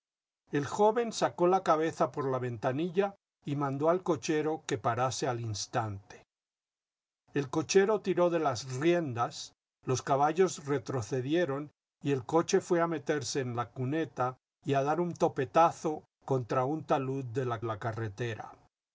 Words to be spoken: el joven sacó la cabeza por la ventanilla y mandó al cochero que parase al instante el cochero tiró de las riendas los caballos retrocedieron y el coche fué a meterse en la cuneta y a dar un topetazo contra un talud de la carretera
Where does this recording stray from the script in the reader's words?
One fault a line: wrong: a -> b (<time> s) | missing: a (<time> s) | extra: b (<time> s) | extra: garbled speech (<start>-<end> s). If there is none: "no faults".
extra: la (17.6 s)